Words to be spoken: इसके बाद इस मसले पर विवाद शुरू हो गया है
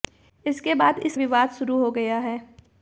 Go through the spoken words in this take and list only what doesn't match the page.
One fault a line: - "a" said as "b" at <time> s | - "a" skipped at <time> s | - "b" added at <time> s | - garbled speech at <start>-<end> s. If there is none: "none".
- "मसले पर" skipped at 1.2 s